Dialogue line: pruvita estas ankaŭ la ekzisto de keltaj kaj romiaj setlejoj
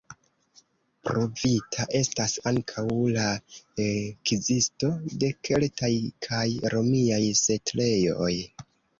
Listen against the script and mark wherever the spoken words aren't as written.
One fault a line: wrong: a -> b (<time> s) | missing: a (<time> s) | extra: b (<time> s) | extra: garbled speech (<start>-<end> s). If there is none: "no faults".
no faults